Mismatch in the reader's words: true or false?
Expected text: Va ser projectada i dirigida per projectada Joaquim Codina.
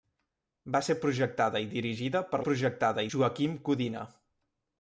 false